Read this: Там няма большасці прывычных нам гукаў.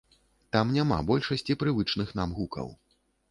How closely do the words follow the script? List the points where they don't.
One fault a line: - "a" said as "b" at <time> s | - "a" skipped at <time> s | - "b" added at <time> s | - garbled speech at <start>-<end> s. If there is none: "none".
none